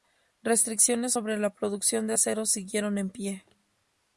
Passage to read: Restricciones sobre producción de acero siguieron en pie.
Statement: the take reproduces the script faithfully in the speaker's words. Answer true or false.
false